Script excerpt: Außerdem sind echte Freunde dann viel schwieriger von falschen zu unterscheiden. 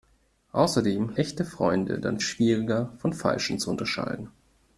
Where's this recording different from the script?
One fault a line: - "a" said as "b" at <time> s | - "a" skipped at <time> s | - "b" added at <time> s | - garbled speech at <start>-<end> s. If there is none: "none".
- "sind" skipped at 1.1 s
- "viel" skipped at 2.2 s